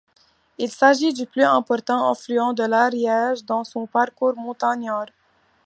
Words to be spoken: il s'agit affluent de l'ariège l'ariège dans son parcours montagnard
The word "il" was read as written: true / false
true